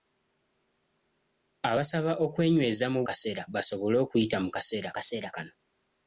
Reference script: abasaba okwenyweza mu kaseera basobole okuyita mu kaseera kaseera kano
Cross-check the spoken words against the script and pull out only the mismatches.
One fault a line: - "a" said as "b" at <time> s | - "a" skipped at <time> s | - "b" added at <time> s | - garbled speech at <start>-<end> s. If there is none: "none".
none